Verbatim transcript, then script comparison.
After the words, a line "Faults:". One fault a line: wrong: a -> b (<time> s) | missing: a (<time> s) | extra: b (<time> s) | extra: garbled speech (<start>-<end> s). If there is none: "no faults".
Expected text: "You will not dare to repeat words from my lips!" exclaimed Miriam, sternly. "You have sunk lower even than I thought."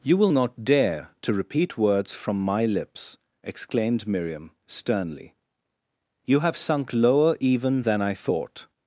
"You will not dare to repeat words from my lips!" exclaimed Miriam, sternly. "You have sunk lower even than I thought."
Faults:
no faults